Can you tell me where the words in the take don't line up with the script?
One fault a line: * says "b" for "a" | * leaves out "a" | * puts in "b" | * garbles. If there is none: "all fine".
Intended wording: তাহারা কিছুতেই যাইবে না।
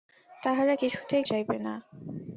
all fine